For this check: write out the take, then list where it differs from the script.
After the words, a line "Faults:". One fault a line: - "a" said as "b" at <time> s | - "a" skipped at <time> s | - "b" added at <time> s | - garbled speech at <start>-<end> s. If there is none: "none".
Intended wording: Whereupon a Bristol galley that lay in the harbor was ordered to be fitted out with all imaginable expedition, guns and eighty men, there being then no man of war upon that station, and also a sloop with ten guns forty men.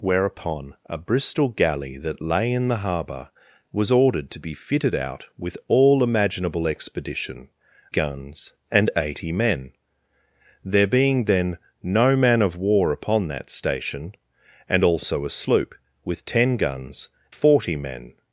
Whereupon a Bristol galley that lay in the harbor was ordered to be fitted out with all imaginable expedition, guns and eighty men, there being then no man of war upon that station, and also a sloop with ten guns forty men.
Faults:
none